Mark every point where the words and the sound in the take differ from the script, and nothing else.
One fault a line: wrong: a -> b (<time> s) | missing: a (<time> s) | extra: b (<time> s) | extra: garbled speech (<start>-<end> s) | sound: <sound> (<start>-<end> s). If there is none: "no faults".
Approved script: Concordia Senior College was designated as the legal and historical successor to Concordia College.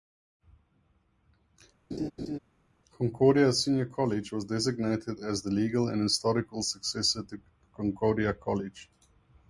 sound: laugh (1.9-2.4 s)